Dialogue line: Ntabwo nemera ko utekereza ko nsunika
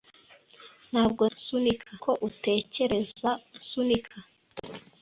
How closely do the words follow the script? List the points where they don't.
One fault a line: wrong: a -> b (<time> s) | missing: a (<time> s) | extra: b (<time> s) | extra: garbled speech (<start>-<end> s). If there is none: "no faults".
wrong: nemera -> nsunika (1.3 s)
missing: ko (3.3 s)